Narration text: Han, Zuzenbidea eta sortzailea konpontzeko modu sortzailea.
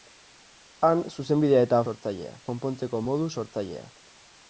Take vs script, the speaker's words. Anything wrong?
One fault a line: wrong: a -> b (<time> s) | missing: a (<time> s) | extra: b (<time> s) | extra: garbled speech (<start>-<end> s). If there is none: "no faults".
no faults